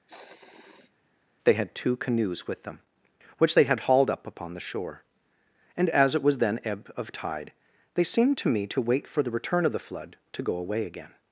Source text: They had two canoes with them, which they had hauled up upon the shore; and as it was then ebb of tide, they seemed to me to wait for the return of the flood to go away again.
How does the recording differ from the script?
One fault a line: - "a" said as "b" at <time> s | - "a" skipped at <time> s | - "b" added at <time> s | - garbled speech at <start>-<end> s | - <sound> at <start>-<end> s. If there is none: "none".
- sniff at 0.1-0.9 s